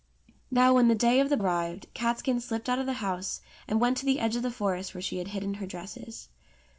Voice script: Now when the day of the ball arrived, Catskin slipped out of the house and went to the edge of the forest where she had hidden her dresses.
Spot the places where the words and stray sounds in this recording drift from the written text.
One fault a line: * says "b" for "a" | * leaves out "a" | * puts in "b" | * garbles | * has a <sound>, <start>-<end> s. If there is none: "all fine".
* leaves out "ball"